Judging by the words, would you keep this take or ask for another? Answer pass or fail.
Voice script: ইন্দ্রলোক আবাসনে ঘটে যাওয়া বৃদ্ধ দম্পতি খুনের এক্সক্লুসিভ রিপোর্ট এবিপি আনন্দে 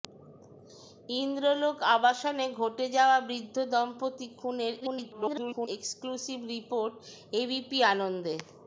fail